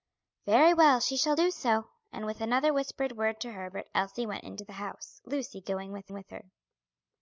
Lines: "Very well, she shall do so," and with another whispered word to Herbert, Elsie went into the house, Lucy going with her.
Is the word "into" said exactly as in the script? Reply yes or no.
yes